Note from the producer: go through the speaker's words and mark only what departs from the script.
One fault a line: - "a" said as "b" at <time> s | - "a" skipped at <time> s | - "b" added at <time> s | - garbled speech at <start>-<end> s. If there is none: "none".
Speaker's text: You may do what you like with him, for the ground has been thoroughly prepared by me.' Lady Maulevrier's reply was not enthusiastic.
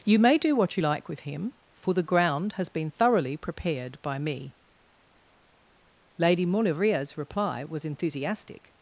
- "not" skipped at 7.9 s